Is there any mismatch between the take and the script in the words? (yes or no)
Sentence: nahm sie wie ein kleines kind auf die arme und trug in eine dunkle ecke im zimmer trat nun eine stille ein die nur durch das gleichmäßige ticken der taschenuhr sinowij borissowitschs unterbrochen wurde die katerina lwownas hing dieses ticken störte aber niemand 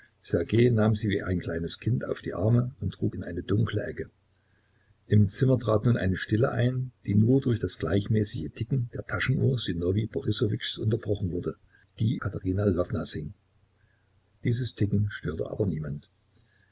no